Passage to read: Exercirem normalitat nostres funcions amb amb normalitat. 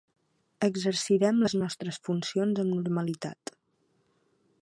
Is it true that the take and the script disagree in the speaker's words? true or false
true